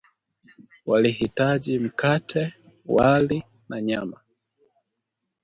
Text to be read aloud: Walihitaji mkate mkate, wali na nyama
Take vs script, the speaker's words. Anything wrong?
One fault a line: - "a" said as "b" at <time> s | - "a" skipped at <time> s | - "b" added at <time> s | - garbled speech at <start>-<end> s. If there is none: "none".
- "mkate" skipped at 2.5 s